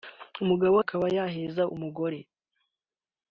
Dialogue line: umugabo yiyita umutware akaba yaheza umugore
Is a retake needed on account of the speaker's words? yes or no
yes